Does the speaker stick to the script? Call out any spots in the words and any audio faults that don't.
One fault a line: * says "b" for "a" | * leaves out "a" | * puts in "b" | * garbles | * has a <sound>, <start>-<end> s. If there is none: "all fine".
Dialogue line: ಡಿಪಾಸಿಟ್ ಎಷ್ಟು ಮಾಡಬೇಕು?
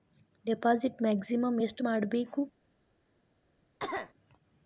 * puts in "ಮ್ಯಾಕ್ಸಿಮಮ್"
* has a cough, 3.8-4.1 s